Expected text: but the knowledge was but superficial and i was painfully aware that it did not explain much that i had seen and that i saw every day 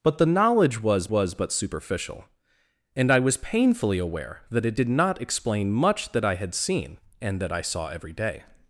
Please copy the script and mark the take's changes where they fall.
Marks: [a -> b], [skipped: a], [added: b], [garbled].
but the knowledge was [added: was] but superficial and i was painfully aware that it did not explain much that i had seen and that i saw every day